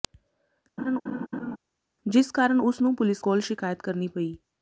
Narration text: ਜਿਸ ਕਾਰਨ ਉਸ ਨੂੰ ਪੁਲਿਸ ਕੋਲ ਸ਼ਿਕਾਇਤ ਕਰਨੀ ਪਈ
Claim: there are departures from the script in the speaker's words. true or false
false